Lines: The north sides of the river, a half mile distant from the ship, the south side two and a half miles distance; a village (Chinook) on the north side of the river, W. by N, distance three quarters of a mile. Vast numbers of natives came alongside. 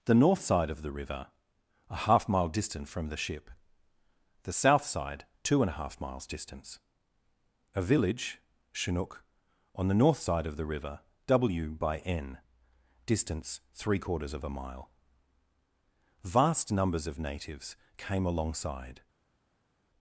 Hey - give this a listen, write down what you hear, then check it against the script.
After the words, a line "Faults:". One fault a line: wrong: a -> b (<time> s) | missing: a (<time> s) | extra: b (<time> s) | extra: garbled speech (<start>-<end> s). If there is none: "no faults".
The north side of the river, a half mile distant from the ship, the south side two and a half miles distance; a village (Chinook) on the north side of the river, W. by N, distance three quarters of a mile. Vast numbers of natives came alongside.
Faults:
wrong: sides -> side (0.4 s)